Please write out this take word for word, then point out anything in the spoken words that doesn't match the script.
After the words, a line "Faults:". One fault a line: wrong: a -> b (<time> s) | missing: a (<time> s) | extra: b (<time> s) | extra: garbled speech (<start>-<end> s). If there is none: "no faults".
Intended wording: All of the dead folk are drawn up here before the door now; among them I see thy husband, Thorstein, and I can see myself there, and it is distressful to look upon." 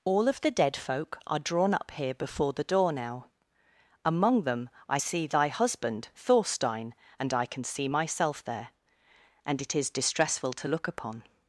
All of the dead folk are drawn up here before the door now; among them I see thy husband, Thorstein, and I can see myself there, and it is distressful to look upon."
Faults:
no faults